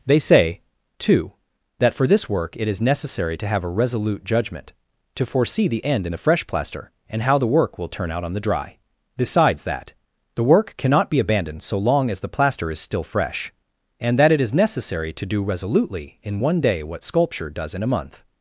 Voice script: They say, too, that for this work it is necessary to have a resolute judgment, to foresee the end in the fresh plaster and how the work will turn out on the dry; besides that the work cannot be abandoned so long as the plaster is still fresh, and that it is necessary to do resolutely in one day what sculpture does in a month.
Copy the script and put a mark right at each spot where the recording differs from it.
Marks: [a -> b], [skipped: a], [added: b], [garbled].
They say, too, that for this work it is necessary to have a resolute judgment, to foresee the end in the fresh plaster and how the work will turn out on the dry; besides that the work cannot be abandoned so long as the plaster is still fresh, and that it is necessary to do resolutely in one day what sculpture does in a month.